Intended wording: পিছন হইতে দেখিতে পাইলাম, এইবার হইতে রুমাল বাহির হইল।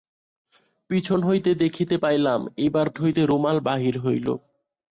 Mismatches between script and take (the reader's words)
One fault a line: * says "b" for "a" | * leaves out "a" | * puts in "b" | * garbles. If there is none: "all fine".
all fine